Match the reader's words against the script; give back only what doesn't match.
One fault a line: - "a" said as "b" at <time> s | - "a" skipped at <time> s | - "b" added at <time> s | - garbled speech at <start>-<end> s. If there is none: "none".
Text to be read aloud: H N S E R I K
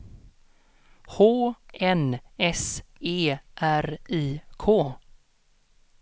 none